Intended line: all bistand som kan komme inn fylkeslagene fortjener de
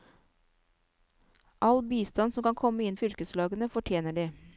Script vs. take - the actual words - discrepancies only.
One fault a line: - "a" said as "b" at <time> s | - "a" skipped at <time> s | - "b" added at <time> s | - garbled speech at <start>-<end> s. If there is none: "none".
none